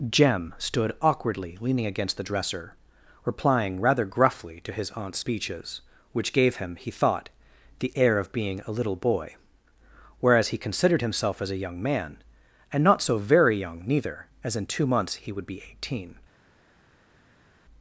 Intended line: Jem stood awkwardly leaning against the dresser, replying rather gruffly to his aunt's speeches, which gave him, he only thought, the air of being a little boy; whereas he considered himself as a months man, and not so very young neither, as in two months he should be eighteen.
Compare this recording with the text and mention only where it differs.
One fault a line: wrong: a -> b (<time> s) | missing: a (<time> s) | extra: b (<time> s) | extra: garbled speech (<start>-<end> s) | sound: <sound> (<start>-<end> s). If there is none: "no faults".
missing: only (6.9 s)
wrong: months -> young (11.6 s)
wrong: should -> would (15.3 s)